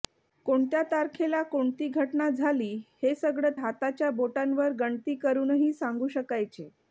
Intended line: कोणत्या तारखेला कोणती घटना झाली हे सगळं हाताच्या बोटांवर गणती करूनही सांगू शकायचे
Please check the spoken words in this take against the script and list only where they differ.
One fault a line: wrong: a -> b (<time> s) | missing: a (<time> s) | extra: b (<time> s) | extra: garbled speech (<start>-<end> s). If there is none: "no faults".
no faults